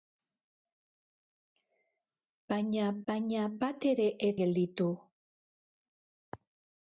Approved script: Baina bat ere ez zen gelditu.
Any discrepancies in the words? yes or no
yes